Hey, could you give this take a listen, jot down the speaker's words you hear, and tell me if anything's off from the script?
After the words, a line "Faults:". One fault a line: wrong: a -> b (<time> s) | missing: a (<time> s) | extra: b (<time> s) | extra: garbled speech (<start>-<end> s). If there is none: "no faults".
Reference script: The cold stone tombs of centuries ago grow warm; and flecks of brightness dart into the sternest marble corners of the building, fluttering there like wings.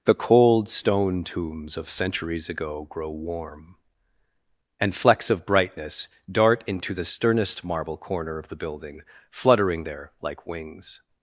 The cold stone tombs of centuries ago grow warm; and flecks of brightness dart into the sternest marble corner of the building, fluttering there like wings.
Faults:
wrong: corners -> corner (8.0 s)